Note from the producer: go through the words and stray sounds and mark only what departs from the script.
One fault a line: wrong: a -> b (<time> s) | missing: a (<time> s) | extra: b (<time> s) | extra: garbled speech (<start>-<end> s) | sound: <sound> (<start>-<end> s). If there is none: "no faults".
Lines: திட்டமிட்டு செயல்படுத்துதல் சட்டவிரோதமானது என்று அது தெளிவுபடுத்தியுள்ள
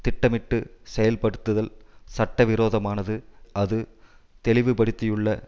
missing: என்று (3.1 s)